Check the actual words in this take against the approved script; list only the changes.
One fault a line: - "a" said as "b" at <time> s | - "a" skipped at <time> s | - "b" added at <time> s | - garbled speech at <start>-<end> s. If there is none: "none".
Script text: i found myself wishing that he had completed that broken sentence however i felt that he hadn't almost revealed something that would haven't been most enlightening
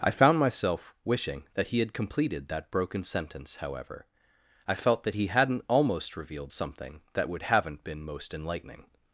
none